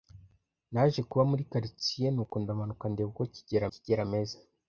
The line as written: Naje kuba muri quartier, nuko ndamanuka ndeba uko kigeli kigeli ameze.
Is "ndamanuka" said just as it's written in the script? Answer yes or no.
yes